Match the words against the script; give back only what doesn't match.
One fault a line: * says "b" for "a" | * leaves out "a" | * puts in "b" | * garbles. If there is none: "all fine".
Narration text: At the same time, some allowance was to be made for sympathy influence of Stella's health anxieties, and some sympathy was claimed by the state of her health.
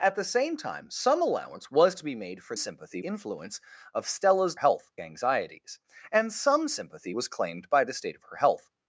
all fine